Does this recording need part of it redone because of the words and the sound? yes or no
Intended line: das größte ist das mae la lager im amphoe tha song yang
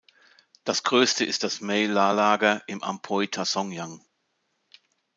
no